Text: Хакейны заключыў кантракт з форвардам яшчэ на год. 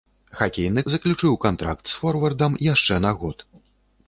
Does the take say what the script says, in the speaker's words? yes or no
yes